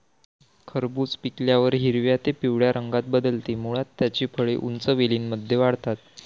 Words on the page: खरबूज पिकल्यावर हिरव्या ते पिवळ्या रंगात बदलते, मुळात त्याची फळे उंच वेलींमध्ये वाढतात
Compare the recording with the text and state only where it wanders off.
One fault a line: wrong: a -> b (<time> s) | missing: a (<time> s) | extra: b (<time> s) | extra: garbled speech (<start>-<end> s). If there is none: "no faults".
no faults